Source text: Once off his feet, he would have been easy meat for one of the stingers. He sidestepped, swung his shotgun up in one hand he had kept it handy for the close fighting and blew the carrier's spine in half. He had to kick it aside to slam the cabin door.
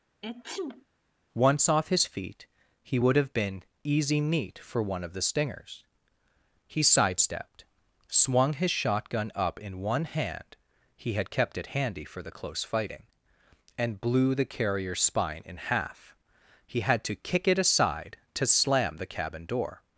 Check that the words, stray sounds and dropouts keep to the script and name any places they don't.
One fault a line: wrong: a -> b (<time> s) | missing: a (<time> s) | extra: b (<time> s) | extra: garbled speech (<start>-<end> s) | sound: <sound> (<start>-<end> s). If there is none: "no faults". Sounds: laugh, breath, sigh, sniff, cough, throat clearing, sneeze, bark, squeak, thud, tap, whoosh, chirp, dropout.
sound: sneeze (0.2-0.9 s)